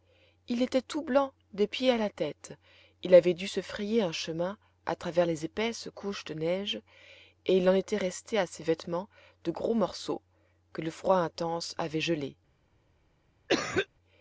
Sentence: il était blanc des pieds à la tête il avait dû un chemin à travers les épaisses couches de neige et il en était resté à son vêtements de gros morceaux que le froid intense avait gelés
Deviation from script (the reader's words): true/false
true